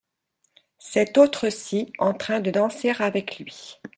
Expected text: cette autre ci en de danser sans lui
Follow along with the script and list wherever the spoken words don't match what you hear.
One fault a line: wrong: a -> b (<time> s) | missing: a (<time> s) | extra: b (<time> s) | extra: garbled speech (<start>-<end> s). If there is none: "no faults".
extra: train (2.1 s)
wrong: sans -> avec (3.0 s)